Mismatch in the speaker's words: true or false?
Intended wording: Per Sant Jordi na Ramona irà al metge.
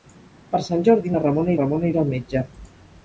true